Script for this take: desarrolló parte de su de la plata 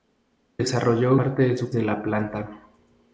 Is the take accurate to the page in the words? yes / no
yes